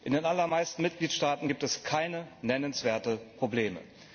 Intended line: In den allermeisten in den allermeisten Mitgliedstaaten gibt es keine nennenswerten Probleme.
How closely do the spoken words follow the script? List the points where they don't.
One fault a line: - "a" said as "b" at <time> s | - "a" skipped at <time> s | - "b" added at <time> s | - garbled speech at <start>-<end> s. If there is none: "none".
- "in den allermeisten" skipped at 0.8 s